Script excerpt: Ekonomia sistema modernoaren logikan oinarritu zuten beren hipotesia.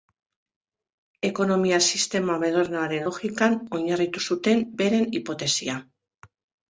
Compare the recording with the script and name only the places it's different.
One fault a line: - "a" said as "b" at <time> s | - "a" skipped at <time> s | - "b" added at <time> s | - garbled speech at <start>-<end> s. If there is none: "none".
none